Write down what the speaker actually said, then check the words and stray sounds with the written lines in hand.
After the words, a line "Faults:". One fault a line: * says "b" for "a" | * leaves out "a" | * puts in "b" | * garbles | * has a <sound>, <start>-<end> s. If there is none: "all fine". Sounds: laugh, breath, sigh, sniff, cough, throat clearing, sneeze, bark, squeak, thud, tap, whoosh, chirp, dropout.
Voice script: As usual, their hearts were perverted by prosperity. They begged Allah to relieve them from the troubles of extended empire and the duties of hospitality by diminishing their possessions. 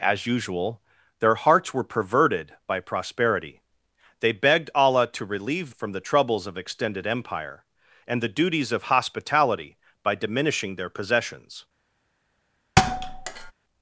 As usual, their hearts were perverted by prosperity. They begged Allah to relieve from the troubles of extended empire and the duties of hospitality by diminishing their possessions.
Faults:
* leaves out "them"
* has a thud, 12.8-13.5 s